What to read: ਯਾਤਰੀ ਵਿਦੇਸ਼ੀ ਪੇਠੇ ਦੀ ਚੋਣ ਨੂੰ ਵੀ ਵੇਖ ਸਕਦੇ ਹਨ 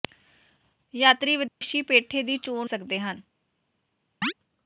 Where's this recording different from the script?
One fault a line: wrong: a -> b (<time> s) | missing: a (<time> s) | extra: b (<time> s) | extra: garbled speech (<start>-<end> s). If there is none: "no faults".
missing: ਨੂੰ ਵੀ ਵੇਖ (2.7 s)